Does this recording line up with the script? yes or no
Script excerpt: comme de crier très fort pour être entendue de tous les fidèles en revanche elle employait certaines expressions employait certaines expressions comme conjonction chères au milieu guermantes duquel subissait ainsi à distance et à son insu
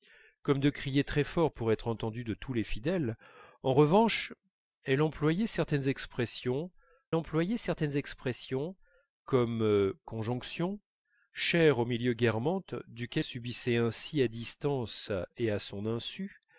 yes